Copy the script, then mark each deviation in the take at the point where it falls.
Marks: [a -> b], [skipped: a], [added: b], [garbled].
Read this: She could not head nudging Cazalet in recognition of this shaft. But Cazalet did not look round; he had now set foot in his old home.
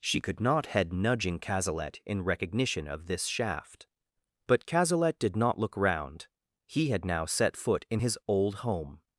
She could not head nudging Cazalet in recognition of this shaft. But Cazalet did not look round; he had now set foot in his old home.